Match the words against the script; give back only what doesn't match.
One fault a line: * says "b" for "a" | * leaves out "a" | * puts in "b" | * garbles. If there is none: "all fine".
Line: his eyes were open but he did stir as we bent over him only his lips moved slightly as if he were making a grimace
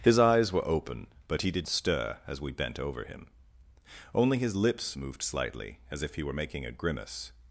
all fine